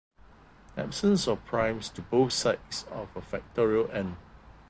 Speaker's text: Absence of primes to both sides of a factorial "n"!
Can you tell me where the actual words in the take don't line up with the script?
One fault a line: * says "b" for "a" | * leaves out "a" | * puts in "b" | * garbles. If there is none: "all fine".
all fine